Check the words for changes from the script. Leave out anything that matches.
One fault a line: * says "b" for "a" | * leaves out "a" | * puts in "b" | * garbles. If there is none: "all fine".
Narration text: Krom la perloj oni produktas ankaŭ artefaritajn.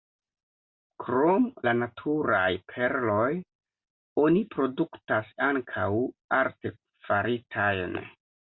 * puts in "naturaj"